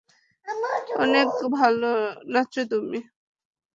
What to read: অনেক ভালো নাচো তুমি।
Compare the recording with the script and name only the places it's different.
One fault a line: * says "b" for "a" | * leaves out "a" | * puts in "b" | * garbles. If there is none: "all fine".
all fine